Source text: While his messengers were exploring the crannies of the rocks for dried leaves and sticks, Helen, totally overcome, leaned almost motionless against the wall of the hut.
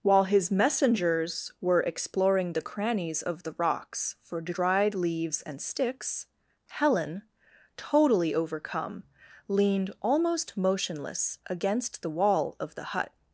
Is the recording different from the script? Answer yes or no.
no